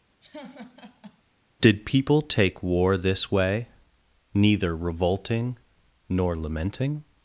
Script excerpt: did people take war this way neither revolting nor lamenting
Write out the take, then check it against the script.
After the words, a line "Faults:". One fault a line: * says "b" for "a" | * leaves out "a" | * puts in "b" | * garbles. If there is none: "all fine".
did people take war this way neither revolting nor lamenting
Faults:
all fine